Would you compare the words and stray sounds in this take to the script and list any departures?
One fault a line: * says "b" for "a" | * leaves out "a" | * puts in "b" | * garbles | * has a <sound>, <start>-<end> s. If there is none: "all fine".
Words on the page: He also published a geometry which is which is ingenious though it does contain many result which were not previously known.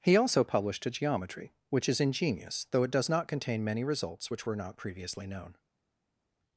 * leaves out "which is"
* puts in "not"
* says "results" for "result"